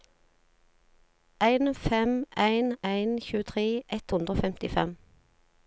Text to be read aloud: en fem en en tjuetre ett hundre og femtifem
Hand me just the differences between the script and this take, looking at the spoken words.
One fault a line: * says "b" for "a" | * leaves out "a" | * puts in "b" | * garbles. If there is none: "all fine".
all fine